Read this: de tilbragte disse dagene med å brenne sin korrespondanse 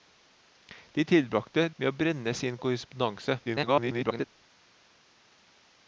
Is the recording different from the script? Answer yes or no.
yes